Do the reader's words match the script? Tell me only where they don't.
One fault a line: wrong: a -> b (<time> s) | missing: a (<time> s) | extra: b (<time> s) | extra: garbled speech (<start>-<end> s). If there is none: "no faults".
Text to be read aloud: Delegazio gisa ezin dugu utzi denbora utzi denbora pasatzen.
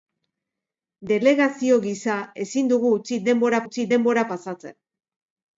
no faults